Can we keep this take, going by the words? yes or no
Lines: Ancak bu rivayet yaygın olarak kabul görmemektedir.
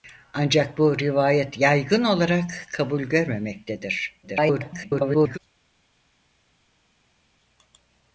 no